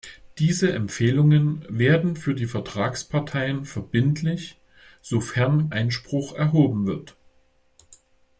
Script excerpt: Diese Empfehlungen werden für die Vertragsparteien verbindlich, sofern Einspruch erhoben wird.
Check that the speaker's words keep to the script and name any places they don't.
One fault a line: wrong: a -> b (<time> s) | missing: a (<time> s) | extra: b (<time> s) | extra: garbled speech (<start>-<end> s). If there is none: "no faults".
no faults